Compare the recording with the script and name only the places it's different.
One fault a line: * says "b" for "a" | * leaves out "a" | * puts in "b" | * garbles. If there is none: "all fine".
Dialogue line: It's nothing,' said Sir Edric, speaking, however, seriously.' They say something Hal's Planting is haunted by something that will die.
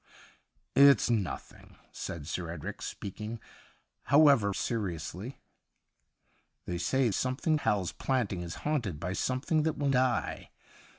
all fine